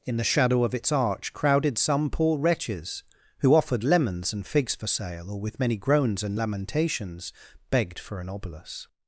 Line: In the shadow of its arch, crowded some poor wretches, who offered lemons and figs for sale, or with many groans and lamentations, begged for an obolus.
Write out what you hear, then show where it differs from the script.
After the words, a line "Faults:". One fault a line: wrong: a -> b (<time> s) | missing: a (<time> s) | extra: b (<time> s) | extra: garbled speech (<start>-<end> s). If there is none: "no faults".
In the shadow of its arch, crowded some poor wretches, who offered lemons and figs for sale, or with many groans and lamentations, begged for an obolus.
Faults:
no faults